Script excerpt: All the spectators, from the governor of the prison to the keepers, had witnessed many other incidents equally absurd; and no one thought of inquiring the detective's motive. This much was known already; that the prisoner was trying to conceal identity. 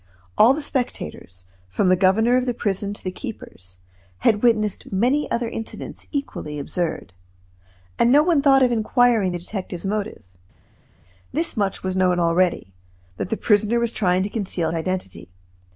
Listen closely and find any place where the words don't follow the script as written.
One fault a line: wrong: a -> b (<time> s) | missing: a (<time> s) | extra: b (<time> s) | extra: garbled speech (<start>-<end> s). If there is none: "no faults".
no faults